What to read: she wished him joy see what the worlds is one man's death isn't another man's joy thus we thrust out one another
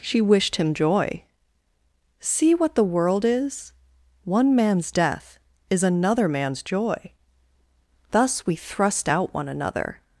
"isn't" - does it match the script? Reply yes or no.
no